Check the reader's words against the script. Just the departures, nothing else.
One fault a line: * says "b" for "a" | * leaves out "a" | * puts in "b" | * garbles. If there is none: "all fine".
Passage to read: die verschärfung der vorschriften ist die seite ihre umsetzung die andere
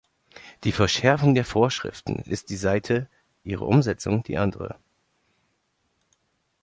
all fine